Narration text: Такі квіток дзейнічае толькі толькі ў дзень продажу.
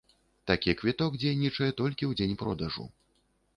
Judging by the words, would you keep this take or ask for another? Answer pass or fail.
fail